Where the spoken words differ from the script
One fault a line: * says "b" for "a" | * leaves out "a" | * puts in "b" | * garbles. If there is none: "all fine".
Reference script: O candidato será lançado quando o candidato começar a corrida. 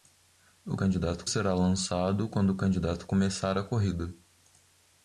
all fine